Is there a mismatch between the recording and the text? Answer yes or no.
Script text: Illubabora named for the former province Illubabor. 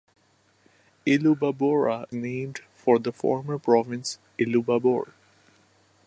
no